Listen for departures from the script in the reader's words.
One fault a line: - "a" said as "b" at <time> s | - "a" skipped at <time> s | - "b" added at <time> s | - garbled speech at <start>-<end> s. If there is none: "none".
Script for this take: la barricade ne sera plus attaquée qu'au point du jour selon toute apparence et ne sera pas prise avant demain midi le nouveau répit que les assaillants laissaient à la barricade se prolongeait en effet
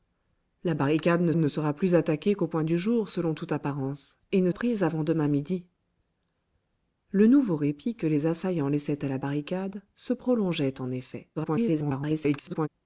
- "ne" added at 1.4 s
- "sera pas" skipped at 4.5 s
- garbled speech at 11.4-12.7 s